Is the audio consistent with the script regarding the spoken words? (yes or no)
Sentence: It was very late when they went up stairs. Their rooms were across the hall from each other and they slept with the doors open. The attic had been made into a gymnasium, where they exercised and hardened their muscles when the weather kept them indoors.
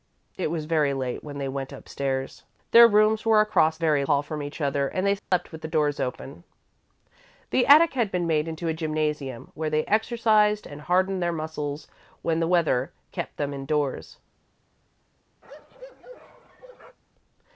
no